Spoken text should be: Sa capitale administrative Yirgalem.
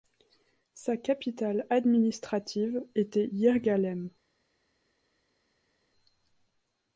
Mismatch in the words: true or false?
true